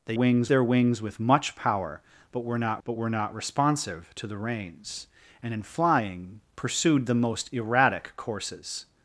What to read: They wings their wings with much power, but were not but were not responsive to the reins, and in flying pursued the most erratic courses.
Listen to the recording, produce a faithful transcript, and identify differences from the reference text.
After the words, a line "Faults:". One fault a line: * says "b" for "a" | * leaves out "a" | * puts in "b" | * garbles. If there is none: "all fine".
They wings their wings with much power, but were not but were not responsive to the reins, and in flying pursued the most erratic courses.
Faults:
all fine